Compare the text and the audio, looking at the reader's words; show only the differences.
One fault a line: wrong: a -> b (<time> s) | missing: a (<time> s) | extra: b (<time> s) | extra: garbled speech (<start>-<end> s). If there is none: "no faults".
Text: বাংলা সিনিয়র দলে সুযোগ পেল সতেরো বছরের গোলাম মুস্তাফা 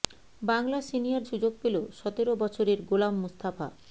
missing: দলে (1.2 s)